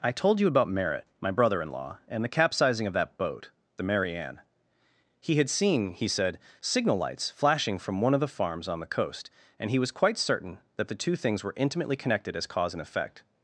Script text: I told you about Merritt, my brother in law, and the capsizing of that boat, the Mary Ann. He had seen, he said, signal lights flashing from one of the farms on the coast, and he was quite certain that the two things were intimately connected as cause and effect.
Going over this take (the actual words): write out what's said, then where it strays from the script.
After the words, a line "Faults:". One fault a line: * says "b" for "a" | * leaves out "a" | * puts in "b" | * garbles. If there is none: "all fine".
I told you about Merritt, my brother in law, and the capsizing of that boat, the Mary Ann. He had seen, he said, signal lights flashing from one of the farms on the coast, and he was quite certain that the two things were intimately connected as cause and effect.
Faults:
all fine